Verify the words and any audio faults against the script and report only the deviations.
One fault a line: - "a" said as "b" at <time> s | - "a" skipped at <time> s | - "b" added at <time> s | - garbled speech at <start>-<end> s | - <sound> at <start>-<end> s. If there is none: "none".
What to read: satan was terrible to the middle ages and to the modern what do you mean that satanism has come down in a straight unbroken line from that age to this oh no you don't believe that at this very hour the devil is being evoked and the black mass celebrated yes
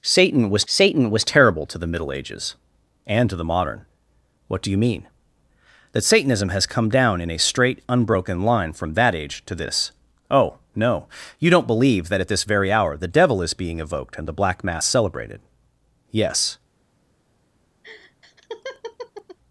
- "satan was" added at 0.6 s
- laugh at 17.8-19.4 s